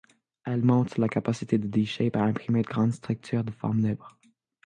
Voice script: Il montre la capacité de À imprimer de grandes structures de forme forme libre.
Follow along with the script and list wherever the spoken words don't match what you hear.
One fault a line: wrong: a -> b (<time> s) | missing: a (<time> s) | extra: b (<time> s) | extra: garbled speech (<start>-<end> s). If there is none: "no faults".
wrong: Il -> Elle (0.5 s)
extra: D Shape (1.7 s)
missing: forme (3.9 s)